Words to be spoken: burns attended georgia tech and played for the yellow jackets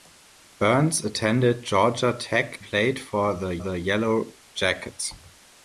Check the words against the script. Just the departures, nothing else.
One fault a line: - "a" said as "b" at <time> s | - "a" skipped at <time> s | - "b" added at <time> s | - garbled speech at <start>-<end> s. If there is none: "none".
- "and" skipped at 2.6 s
- "the" added at 3.6 s